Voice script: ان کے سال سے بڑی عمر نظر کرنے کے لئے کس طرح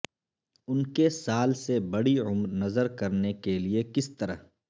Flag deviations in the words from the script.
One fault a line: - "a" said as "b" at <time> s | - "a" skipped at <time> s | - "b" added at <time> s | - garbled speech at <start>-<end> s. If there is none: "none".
none